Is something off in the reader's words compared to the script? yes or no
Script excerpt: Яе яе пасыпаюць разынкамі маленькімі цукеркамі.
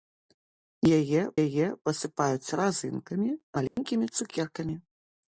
no